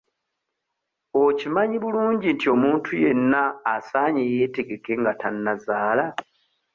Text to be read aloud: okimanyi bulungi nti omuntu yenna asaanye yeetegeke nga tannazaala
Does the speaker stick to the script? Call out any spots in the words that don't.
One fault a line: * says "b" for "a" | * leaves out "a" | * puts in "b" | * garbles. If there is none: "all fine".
all fine